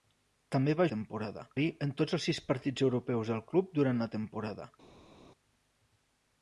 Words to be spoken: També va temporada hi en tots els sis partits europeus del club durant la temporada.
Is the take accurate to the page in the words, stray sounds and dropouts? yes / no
yes